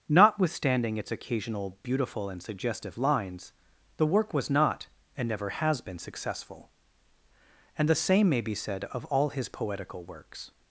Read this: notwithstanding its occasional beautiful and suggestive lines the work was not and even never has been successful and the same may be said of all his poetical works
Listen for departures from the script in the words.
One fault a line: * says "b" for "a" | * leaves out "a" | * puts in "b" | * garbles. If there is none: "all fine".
* leaves out "even"